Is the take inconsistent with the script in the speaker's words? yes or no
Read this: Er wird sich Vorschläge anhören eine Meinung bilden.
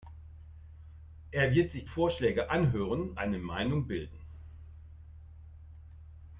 no